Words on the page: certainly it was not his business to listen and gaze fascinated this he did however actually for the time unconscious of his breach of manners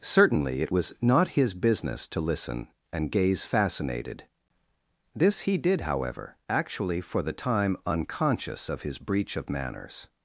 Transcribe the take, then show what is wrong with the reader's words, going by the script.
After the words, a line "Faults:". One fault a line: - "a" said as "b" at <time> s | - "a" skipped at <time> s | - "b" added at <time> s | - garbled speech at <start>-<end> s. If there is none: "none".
certainly it was not his business to listen and gaze fascinated this he did however actually for the time unconscious of his breach of manners
Faults:
none